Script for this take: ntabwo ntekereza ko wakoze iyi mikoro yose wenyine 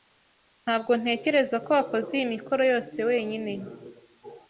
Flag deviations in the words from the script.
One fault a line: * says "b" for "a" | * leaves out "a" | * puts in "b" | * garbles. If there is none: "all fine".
all fine